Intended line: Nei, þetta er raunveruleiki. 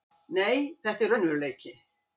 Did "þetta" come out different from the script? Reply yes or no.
no